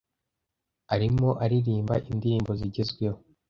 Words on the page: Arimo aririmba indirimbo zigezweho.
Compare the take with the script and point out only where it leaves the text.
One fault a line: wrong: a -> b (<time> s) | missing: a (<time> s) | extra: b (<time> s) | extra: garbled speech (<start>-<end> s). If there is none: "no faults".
no faults